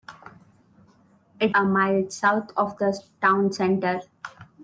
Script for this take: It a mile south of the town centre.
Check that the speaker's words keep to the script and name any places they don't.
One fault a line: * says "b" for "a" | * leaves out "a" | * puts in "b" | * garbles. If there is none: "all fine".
all fine